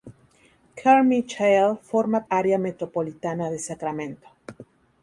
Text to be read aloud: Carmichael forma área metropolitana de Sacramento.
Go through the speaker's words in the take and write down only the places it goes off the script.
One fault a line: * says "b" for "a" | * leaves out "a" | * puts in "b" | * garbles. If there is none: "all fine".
all fine